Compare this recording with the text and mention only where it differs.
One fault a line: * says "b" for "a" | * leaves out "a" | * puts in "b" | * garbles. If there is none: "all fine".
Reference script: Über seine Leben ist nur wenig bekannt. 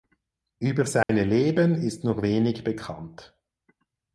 all fine